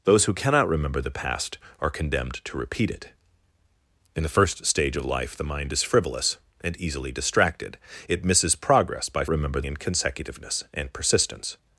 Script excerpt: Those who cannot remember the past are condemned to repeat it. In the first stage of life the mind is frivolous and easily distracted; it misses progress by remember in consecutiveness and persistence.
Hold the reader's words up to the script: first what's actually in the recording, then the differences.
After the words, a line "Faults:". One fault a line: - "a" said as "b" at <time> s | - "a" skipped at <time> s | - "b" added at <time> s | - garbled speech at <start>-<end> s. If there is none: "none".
Those who cannot remember the past are condemned to repeat it. In the first stage of life the mind is frivolous and easily distracted; it misses progress by remember in consecutiveness and persistence.
Faults:
none